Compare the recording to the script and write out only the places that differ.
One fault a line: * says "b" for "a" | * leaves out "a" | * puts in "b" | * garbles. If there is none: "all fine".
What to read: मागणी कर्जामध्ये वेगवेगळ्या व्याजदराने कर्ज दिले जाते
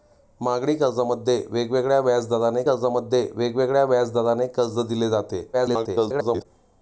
* puts in "कर्जामध्ये वेगवेगळ्या व्याजदराने"
* garbles